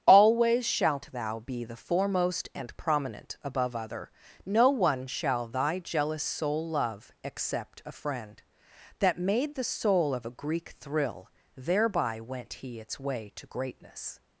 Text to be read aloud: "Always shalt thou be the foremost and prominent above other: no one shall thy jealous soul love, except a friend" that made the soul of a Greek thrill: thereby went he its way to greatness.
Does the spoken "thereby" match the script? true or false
true